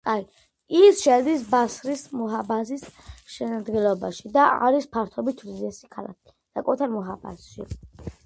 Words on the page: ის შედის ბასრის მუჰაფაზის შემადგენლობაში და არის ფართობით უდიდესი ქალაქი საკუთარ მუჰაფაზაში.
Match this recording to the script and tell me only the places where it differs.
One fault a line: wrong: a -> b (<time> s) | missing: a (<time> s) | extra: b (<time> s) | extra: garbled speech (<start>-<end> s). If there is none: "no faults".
no faults